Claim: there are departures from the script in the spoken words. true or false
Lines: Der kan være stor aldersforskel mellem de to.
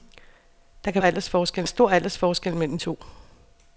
true